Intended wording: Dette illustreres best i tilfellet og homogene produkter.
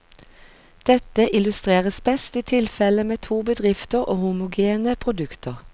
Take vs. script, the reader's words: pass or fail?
fail